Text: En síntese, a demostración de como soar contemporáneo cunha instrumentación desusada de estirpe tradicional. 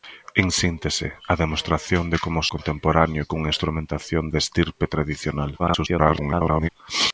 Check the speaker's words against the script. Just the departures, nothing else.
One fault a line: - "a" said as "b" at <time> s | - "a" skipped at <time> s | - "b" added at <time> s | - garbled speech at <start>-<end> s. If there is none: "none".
- "soar" skipped at 2.4 s
- "desusada" skipped at 4.2 s
- garbled speech at 5.6-6.7 s